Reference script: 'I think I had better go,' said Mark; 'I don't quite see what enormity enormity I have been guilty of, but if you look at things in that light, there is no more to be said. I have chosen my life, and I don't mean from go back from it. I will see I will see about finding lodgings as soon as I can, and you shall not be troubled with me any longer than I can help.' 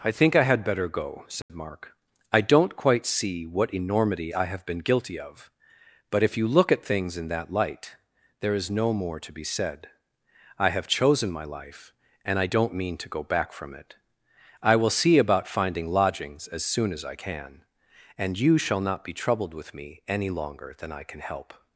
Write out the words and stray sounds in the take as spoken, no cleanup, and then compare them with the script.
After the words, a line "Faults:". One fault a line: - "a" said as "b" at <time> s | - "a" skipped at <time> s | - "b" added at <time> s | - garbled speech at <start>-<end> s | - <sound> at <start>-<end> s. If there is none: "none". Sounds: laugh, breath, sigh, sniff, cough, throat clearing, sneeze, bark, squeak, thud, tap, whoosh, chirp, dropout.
'I think I had better go,' said Mark; 'I don't quite see what enormity I have been guilty of, but if you look at things in that light, there is no more to be said. I have chosen my life, and I don't mean to go back from it. I will see about finding lodgings as soon as I can, and you shall not be troubled with me any longer than I can help.'
Faults:
- dropout at 1.4-1.5 s
- "enormity" skipped at 4.3 s
- "from" said as "to" at 13.0 s
- "I will see" skipped at 15.2 s